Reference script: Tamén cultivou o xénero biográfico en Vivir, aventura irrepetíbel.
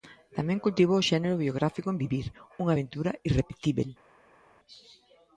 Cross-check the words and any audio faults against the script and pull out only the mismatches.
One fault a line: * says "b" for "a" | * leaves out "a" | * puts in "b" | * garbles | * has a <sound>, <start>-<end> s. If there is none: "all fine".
* puts in "unha"